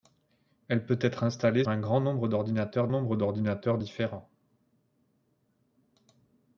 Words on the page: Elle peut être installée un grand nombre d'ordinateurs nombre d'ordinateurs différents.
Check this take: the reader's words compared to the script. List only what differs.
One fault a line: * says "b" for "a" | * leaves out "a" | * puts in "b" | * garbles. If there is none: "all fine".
all fine